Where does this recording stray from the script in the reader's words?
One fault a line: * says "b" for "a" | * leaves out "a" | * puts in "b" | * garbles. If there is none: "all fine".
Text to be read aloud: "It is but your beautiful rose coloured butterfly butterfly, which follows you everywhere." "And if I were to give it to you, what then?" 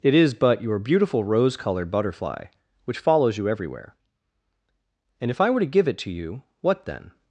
* leaves out "butterfly"